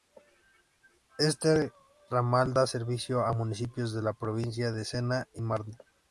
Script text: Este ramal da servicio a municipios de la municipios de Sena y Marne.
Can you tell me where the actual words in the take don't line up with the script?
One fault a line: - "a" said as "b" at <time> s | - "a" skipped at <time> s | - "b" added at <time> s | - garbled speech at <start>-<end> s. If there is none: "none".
- "municipios" said as "provincia" at 4.1 s